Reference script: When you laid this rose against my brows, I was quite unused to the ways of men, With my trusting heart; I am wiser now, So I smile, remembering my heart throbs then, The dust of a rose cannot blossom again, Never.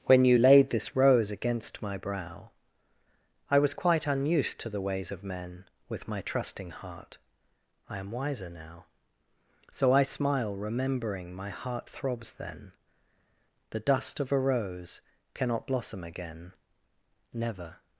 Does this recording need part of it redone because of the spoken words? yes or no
yes